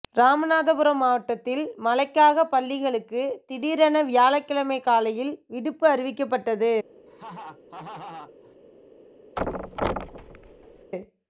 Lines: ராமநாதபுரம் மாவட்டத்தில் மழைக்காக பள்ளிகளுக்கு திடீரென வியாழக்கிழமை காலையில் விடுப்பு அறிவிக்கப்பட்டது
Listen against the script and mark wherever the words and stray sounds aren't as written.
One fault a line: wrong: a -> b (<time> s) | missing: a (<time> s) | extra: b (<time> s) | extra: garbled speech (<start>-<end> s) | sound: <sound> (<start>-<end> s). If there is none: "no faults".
sound: laugh (7.1-8.6 s)
sound: thud (9.4-10.9 s)